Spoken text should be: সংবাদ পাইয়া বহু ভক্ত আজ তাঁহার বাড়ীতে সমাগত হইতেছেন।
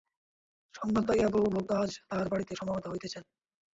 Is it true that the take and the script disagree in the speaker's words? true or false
false